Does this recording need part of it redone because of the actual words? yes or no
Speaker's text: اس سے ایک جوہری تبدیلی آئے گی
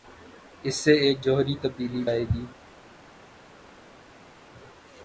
no